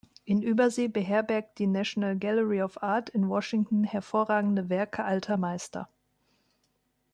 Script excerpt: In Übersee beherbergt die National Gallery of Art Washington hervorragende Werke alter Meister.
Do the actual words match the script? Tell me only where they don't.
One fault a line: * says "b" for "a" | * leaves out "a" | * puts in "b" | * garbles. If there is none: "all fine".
* puts in "in"